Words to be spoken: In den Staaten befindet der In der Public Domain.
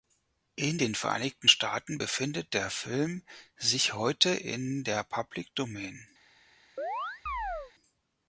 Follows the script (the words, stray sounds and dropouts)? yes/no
no